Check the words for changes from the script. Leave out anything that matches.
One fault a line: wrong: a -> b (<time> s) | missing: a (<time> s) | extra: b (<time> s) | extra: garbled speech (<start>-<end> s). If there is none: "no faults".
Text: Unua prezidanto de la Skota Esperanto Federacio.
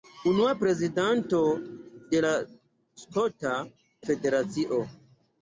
missing: Esperanto (3.6 s)